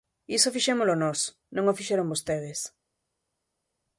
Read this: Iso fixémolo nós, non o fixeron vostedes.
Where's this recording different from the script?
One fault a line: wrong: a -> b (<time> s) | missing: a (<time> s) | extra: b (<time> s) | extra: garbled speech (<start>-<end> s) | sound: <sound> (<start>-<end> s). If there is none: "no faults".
no faults